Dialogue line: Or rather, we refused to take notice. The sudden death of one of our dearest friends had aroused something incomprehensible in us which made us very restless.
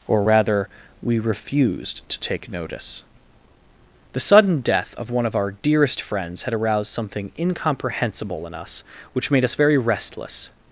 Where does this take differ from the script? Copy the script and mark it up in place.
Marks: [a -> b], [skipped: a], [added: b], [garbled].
Or rather, we refused to take notice. The sudden death of one of our dearest friends had aroused something incomprehensible in us which made us very restless.